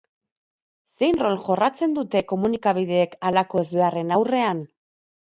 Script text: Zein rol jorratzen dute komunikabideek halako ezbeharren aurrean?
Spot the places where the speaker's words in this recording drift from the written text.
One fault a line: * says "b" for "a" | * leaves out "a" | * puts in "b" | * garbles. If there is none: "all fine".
all fine